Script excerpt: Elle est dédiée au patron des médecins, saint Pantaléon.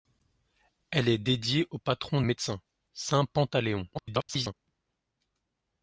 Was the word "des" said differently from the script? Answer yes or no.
yes